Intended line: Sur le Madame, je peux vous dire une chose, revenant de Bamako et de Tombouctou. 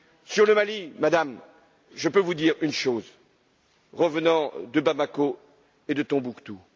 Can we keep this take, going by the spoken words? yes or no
no